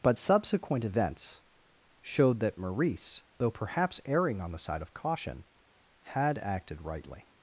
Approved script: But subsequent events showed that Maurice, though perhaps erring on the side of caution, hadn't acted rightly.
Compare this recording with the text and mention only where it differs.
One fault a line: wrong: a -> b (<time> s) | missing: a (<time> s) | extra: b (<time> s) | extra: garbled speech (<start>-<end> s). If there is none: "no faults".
wrong: hadn't -> had (6.0 s)